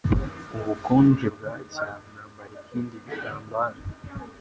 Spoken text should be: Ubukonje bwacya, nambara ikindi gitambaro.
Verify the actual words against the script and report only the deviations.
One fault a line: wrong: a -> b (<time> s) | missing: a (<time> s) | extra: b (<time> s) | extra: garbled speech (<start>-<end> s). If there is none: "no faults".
no faults